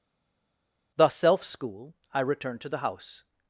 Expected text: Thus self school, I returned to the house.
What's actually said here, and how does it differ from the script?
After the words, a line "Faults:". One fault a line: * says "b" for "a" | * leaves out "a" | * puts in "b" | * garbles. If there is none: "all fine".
Thus self school, I returned to the house.
Faults:
all fine